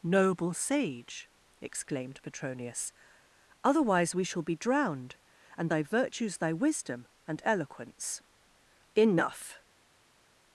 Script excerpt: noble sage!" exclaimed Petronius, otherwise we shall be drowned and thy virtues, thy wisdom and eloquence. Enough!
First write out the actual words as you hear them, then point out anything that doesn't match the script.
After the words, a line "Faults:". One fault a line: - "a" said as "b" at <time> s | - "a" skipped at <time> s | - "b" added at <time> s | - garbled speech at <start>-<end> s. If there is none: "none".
noble sage!" exclaimed Petronius, otherwise we shall be drowned and thy virtues, thy wisdom and eloquence. Enough!
Faults:
none